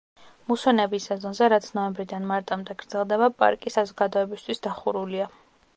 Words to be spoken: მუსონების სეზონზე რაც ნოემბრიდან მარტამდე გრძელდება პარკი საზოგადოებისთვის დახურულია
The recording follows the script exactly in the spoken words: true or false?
true